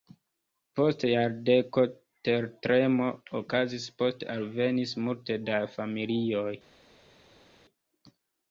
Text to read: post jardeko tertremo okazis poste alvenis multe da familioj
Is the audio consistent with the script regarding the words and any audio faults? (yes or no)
yes